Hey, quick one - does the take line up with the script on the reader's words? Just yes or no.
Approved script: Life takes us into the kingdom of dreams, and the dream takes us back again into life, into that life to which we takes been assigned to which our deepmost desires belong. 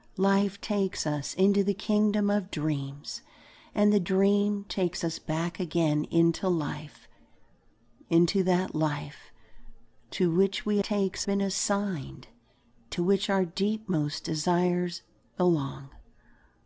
yes